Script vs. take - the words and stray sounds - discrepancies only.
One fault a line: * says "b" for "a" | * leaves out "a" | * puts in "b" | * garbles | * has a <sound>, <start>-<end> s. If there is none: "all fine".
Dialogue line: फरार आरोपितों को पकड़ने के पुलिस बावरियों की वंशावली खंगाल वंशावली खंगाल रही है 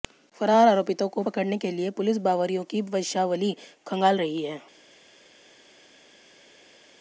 * puts in "लिए"
* leaves out "वंशावली खंगाल"